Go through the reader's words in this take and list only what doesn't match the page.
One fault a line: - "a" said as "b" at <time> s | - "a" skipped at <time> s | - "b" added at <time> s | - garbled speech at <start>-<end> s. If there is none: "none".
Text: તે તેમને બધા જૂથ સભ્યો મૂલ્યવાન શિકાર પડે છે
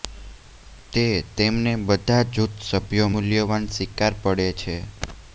none